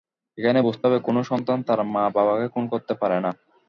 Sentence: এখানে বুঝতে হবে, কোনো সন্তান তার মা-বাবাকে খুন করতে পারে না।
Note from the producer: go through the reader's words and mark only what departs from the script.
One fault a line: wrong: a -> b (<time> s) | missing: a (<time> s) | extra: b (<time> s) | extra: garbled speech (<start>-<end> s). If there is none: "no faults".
no faults